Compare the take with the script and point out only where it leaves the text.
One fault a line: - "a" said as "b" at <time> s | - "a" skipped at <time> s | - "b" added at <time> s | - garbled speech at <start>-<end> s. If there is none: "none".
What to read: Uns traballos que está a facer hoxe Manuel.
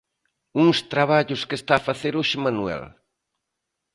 none